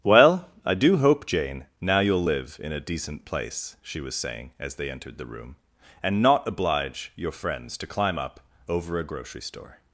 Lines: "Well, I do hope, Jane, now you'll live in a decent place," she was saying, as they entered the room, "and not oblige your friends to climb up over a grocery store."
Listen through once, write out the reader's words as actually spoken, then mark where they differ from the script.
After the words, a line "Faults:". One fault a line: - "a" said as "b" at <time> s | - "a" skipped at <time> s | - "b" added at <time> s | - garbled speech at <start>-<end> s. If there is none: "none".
"Well, I do hope, Jane, now you'll live in a decent place," she was saying, as they entered the room, "and not oblige your friends to climb up over a grocery store."
Faults:
none